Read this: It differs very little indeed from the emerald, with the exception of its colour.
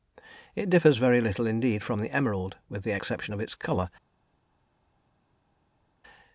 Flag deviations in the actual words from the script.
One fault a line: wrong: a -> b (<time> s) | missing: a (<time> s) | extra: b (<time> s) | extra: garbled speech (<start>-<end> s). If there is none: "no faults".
no faults